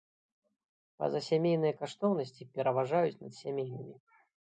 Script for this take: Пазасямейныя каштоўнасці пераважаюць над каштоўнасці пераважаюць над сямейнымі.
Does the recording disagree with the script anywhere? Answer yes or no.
yes